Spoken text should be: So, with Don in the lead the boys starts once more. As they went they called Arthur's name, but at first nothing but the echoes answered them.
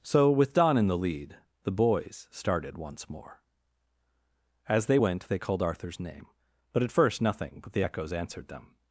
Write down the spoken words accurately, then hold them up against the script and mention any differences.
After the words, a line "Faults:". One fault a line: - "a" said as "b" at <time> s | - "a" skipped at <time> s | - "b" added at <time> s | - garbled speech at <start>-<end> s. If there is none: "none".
So, with Don in the lead the boys started once more. As they went they called Arthur's name, but at first nothing but the echoes answered them.
Faults:
- "starts" said as "started" at 2.3 s